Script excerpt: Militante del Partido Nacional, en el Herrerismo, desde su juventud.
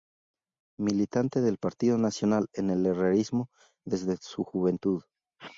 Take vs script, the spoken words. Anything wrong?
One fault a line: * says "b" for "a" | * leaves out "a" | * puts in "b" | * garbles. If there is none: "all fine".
all fine